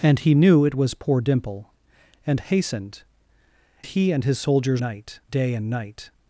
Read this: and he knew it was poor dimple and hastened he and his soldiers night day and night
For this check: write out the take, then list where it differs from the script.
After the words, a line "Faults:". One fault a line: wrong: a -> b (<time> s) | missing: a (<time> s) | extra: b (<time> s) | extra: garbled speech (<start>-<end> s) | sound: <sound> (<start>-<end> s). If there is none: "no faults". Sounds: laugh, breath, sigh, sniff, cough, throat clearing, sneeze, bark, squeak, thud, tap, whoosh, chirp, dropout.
and he knew it was poor dimple and hastened he and his soldiers night day and night
Faults:
no faults